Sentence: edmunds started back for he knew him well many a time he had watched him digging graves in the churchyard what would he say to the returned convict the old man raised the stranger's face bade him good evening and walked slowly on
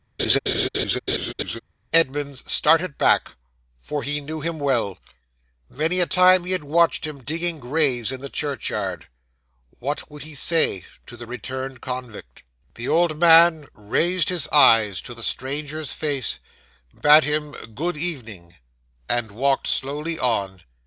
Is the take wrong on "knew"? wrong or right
right